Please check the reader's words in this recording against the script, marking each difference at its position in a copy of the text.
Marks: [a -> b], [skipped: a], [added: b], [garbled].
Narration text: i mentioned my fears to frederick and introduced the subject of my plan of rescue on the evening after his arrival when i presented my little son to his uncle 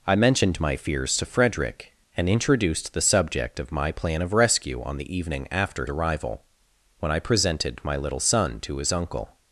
i mentioned my fears to frederick and introduced the subject of my plan of rescue on the evening after [skipped: his] arrival when i presented my little son to his uncle